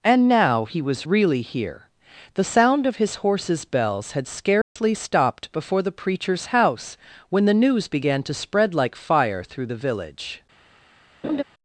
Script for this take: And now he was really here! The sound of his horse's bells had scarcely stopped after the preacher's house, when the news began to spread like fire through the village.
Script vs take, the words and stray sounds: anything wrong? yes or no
yes